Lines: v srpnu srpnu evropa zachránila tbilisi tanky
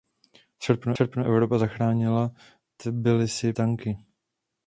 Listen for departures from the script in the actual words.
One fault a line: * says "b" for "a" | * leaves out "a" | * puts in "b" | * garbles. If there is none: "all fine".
all fine